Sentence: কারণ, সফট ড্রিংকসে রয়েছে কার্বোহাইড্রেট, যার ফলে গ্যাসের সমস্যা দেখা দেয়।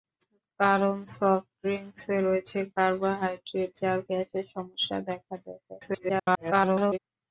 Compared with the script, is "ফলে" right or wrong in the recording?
wrong